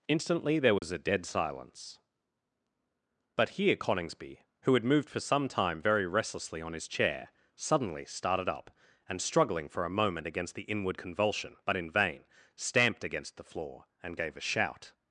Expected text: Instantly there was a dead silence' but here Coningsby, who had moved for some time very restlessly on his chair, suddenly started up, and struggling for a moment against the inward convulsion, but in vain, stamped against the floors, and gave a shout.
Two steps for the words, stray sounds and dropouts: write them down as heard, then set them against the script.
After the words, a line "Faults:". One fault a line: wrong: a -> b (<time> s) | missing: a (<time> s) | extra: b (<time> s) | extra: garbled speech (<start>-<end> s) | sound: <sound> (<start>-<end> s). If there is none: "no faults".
Instantly there was a dead silence' but here Coningsby, who had moved for some time very restlessly on his chair, suddenly started up, and struggling for a moment against the inward convulsion, but in vain, stamped against the floor, and gave a shout.
Faults:
sound: dropout (0.8-0.8 s)
wrong: floors -> floor (13.4 s)